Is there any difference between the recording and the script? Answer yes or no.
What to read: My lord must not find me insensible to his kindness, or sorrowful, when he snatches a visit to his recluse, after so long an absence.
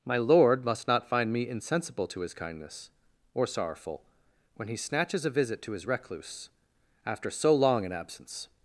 no